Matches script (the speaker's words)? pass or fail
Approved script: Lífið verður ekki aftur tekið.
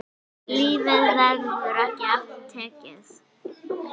pass